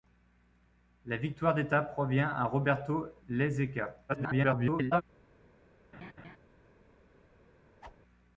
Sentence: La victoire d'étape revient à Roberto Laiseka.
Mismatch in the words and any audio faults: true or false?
true